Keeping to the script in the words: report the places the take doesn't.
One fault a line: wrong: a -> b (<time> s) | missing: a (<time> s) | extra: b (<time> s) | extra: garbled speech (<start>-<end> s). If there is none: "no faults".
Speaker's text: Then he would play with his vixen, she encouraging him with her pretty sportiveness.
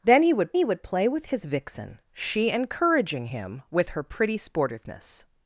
extra: he would (0.5 s)